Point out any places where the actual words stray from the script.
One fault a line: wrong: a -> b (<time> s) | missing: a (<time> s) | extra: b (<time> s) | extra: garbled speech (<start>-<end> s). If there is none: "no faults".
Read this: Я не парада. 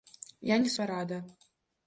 no faults